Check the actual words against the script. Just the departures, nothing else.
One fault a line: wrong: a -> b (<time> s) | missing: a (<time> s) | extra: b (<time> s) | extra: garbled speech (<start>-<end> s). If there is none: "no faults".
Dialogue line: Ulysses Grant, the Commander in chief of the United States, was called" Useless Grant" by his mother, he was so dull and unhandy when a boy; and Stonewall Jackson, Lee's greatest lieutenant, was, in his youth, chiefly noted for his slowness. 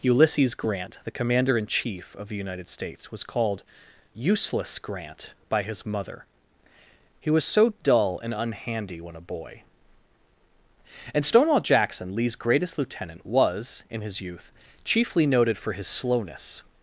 no faults